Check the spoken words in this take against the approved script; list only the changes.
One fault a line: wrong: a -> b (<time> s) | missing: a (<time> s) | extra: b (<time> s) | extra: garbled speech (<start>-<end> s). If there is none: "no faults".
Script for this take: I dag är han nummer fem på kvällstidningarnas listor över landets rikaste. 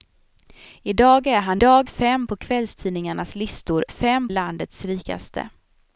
wrong: nummer -> dag (1.6 s)
wrong: över -> fem (3.9 s)